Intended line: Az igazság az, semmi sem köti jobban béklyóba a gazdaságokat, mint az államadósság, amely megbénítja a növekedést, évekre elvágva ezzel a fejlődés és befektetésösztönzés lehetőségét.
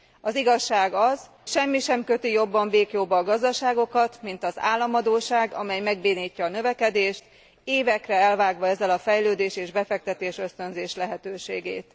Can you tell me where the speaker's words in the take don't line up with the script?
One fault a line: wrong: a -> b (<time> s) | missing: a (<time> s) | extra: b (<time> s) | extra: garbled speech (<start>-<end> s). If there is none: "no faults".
no faults